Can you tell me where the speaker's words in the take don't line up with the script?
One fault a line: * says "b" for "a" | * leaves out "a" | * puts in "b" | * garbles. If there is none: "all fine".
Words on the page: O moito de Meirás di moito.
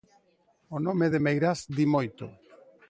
* says "nome" for "moito"